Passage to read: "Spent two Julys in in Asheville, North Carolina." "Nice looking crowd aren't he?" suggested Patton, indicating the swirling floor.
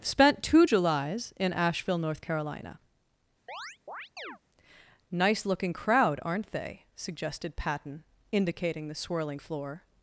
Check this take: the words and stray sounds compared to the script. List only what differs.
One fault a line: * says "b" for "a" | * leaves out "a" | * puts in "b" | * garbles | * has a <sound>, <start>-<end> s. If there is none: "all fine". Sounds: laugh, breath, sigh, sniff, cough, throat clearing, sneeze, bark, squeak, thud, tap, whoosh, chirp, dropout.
* leaves out "in"
* has a chirp, 3.5-4.4 s
* says "they" for "he"